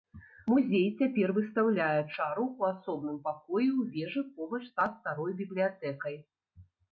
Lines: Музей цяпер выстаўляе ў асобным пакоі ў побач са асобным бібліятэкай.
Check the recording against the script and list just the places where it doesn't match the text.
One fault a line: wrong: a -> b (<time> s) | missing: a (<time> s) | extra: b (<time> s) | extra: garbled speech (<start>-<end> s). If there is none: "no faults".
extra: чару (2.1 s)
extra: вежы (3.9 s)
wrong: асобным -> старой (4.9 s)